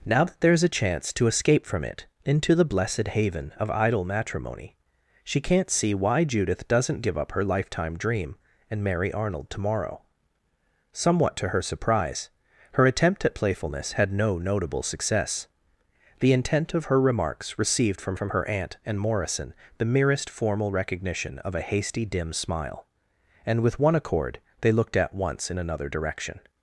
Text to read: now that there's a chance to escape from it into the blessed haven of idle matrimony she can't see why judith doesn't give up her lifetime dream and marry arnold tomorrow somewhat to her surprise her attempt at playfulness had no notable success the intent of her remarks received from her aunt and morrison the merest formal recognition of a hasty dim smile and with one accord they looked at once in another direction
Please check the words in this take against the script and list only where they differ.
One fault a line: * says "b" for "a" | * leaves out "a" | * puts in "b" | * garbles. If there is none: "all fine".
* puts in "from"